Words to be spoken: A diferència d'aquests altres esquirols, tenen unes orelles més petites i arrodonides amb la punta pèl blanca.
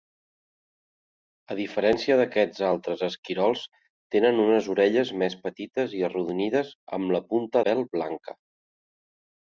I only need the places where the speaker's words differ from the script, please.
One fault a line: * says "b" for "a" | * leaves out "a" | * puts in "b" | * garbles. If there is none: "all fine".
all fine